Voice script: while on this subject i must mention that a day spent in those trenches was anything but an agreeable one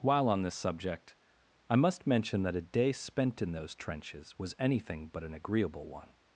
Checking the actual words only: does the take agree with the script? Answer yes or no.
yes